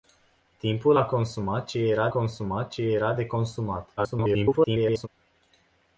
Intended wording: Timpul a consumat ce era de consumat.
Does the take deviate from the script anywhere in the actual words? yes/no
yes